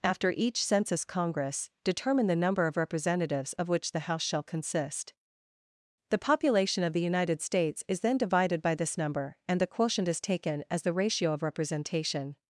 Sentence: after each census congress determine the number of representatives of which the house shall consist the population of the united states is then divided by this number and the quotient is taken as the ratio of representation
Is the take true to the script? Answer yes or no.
yes